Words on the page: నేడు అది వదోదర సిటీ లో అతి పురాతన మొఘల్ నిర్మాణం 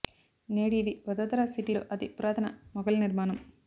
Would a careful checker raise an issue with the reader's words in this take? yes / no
yes